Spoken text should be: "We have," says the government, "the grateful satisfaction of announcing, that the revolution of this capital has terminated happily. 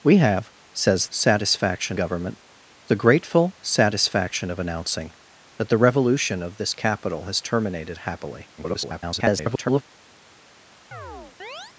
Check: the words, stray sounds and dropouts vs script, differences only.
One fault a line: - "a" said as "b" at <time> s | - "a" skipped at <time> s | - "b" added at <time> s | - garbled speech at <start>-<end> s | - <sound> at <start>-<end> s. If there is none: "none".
- "the" said as "satisfaction" at 1.1 s
- garbled speech at 8.6-9.8 s
- chirp at 10.9-11.7 s